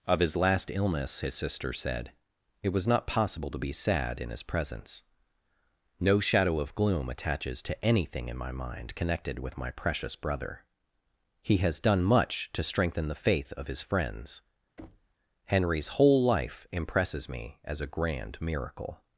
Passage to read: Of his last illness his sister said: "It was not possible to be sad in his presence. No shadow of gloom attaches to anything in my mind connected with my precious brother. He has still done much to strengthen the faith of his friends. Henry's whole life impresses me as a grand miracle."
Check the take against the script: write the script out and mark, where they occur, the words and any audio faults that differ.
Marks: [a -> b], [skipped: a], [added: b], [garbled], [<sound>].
Of his last illness his sister said: "It was not possible to be sad in his presence. No shadow of gloom attaches to anything in my mind connected with my precious brother. He has [skipped: still] done much to strengthen the faith of his friends. [thud] Henry's whole life impresses me as a grand miracle."